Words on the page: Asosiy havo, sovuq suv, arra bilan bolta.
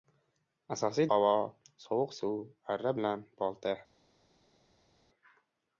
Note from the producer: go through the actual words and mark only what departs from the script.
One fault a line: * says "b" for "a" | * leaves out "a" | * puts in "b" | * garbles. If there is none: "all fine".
all fine